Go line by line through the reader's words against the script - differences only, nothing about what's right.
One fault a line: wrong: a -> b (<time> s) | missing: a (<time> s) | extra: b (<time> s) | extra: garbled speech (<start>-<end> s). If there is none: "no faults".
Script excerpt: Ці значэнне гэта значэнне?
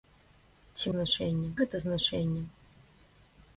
no faults